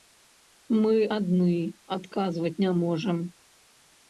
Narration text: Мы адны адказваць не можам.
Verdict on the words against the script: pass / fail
pass